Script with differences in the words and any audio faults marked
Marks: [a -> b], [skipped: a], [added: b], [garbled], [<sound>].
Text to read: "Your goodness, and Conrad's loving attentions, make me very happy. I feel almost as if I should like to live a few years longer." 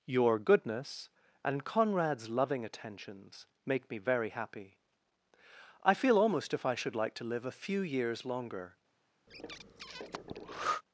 "Your goodness, and Conrad's loving attentions, make me very happy. I feel almost [skipped: as] if I should like to live a few years longer." [breath]